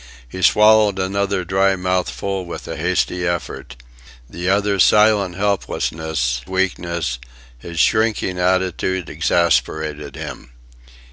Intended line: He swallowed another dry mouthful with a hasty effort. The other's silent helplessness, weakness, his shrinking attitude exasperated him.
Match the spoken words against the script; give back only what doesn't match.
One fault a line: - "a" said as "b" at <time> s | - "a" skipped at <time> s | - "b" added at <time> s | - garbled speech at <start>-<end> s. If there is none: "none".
none